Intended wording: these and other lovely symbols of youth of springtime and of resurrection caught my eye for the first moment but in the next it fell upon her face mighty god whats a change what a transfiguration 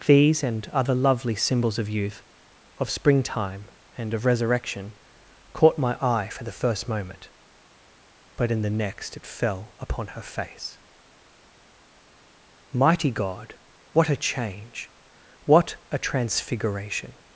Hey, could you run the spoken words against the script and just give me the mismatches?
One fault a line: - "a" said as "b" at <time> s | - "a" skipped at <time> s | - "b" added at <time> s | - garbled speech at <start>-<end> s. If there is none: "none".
- "whats" said as "what" at 13.9 s